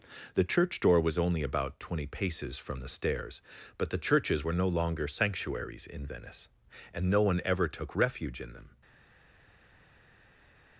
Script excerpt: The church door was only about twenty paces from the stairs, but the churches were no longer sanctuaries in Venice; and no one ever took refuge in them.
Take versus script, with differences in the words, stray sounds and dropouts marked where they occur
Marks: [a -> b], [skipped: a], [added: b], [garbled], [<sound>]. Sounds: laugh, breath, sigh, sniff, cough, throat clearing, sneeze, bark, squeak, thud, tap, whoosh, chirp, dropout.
The church door was only about twenty paces from the stairs, but the churches were no longer sanctuaries in Venice; and no one ever took refuge in them.